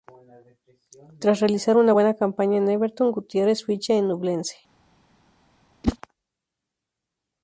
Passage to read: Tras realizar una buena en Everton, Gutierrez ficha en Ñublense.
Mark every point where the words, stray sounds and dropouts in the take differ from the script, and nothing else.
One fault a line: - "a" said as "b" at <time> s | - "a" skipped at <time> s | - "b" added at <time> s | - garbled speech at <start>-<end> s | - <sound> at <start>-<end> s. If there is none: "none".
- "campaña" added at 2.2 s
- whoosh at 5.8-6.0 s